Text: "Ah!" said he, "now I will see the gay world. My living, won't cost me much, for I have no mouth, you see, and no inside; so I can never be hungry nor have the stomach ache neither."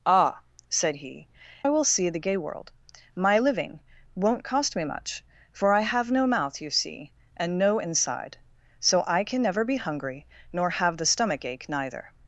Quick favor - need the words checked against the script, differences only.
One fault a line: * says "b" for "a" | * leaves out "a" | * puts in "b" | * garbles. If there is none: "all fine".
* leaves out "now"